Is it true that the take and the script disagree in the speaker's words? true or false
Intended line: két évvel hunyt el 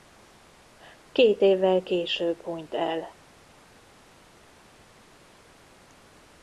true